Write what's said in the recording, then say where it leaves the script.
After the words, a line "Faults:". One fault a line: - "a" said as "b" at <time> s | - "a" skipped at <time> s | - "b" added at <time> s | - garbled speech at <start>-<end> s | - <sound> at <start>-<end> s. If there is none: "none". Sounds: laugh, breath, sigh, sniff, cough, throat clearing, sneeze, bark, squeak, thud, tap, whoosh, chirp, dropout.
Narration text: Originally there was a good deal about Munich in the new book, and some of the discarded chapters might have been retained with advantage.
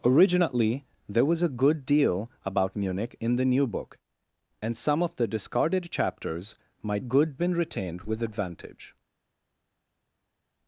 Originally there was a good deal about Munich in the new book, and some of the discarded chapters might good been retained with advantage.
Faults:
- "have" said as "good" at 7.0 s